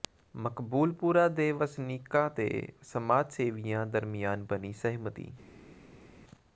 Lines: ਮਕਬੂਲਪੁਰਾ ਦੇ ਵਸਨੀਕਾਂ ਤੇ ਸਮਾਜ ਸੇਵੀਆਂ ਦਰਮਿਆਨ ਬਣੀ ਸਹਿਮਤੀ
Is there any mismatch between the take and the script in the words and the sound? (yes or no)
no